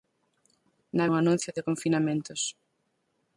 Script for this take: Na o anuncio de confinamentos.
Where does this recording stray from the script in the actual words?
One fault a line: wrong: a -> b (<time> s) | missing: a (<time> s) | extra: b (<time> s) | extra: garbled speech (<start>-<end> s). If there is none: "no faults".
no faults